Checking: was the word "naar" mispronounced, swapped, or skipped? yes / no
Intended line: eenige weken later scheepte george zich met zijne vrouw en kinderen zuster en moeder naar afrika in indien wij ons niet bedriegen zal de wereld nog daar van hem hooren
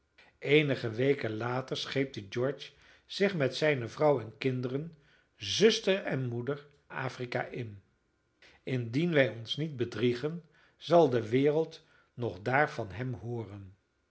yes